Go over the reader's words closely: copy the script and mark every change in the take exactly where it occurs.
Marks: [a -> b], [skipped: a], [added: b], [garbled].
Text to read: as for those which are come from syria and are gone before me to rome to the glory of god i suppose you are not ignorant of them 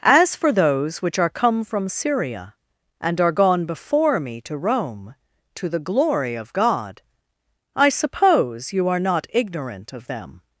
as for those which are come from syria and are gone before me to rome to the glory of god i suppose you are not ignorant of them